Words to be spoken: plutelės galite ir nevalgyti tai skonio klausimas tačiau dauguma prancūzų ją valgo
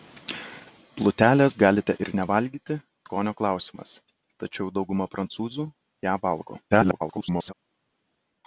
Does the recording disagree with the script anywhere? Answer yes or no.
yes